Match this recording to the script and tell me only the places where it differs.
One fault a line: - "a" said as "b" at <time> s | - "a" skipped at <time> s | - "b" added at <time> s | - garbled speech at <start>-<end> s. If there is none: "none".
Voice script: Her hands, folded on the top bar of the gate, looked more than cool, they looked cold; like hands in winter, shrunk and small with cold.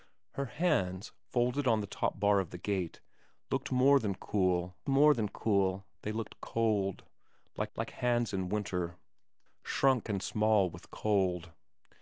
- "more than cool" added at 4.9 s
- "like" added at 7.8 s